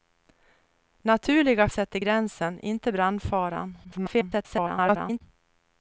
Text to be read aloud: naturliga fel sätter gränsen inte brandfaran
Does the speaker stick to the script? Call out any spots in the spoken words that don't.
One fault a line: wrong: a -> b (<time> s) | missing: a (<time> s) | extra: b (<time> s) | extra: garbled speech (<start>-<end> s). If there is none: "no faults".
missing: fel (1.7 s)
extra: garbled speech (3.8-5.2 s)